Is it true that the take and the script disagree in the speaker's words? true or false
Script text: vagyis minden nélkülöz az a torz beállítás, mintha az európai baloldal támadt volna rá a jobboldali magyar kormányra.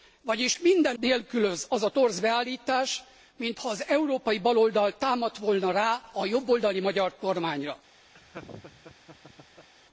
false